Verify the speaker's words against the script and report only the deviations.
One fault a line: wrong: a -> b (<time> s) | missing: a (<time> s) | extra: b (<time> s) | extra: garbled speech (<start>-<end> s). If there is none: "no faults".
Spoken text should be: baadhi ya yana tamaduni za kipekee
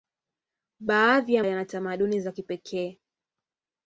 no faults